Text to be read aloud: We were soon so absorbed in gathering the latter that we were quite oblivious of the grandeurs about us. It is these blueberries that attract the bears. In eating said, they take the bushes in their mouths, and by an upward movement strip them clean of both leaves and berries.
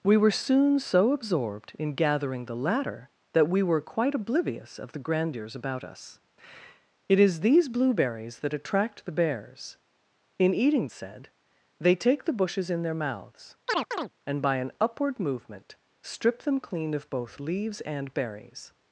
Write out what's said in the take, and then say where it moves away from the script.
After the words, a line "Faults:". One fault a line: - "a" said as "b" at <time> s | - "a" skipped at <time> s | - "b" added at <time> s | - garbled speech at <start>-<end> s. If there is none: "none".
We were soon so absorbed in gathering the latter that we were quite oblivious of the grandeurs about us. It is these blueberries that attract the bears. In eating said, they take the bushes in their mouths, and by an upward movement strip them clean of both leaves and berries.
Faults:
none